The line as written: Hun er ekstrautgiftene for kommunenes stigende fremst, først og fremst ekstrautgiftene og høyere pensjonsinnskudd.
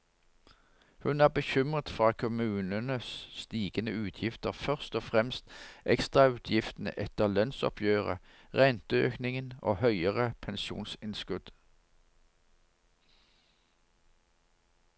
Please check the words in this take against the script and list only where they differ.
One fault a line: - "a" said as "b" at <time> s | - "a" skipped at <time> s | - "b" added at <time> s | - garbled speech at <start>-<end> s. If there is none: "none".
- "ekstrautgiftene" said as "bekymret" at 1.3 s
- "fremst" said as "utgifter" at 4.0 s
- "etter lønnsoppgjøret renteøkningen" added at 7.0 s